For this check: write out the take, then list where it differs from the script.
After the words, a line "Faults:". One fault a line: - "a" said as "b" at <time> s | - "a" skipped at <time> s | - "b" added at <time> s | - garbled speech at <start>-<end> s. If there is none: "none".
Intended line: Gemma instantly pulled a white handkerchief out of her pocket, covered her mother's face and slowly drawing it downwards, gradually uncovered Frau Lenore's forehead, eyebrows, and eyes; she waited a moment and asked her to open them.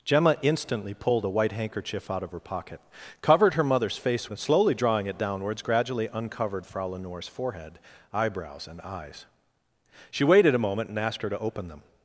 Gemma instantly pulled a white handkerchief out of her pocket, covered her mother's face and slowly drawing it downwards, gradually uncovered Frau Lenore's forehead, eyebrows, and eyes; she waited a moment and asked her to open them.
Faults:
none